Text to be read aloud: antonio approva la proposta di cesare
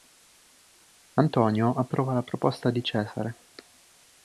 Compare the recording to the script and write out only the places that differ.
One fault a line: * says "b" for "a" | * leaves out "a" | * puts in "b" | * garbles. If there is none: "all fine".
all fine